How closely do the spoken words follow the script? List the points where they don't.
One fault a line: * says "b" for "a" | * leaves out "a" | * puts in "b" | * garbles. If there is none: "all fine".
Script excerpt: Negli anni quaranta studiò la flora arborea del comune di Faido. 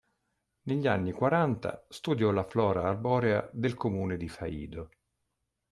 all fine